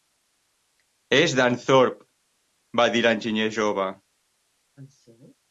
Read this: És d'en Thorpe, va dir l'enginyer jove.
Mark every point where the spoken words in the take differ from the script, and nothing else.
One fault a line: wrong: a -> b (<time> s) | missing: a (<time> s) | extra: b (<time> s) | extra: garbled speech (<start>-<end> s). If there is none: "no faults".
no faults